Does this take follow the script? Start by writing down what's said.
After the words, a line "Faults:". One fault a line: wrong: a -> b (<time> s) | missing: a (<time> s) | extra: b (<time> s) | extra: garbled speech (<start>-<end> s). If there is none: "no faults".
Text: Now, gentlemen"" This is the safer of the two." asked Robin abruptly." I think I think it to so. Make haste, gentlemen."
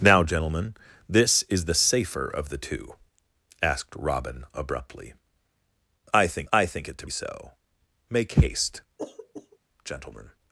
Now, gentlemen"" This is the safer of the two." asked Robin abruptly." I think I think it to so. Make haste, gentlemen."
Faults:
no faults